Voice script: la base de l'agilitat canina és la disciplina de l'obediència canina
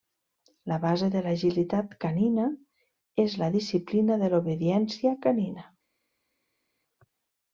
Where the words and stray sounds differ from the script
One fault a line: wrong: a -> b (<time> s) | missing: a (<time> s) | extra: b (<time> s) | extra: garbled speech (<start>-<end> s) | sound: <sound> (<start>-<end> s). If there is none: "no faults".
no faults